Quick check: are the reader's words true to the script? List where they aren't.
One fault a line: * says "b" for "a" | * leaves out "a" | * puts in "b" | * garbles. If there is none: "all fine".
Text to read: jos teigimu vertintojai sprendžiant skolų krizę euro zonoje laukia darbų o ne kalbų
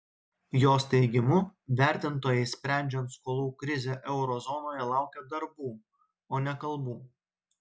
all fine